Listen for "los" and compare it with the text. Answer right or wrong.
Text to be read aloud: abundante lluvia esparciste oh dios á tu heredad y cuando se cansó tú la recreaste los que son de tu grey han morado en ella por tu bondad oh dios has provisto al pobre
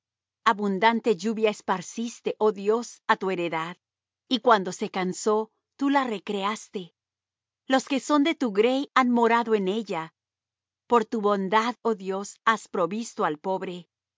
right